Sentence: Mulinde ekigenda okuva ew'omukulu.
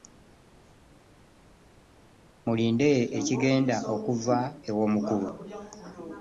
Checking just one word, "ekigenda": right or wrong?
right